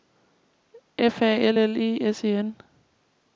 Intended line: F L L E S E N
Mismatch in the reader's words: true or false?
true